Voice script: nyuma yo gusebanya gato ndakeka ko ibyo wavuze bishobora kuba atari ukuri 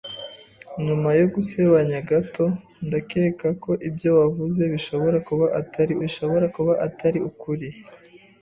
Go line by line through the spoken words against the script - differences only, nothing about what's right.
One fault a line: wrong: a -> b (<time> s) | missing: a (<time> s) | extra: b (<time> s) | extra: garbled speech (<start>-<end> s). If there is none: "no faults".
extra: bishobora kuba atari (6.0 s)